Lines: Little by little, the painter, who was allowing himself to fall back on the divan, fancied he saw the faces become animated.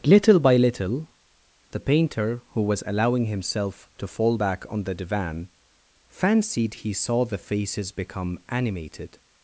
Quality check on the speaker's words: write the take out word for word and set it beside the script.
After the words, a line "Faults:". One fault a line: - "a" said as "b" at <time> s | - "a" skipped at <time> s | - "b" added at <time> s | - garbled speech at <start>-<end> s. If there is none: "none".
Little by little, the painter, who was allowing himself to fall back on the divan, fancied he saw the faces become animated.
Faults:
none